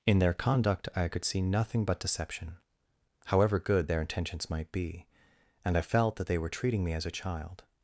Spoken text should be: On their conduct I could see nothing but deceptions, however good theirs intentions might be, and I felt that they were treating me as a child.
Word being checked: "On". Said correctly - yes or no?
no